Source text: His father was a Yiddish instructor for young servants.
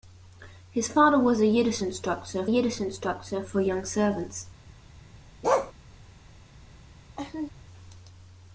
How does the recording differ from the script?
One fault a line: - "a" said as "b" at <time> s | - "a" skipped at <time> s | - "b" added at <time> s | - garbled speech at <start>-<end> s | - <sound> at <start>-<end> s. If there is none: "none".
- "Yiddish instructor" added at 2.4 s
- bark at 5.4-5.7 s
- laugh at 7.2-7.5 s